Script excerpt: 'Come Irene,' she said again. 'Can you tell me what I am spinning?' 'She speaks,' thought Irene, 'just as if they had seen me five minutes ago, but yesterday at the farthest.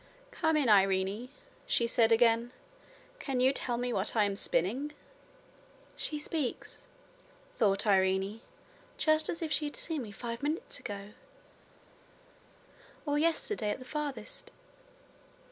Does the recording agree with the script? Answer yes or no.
no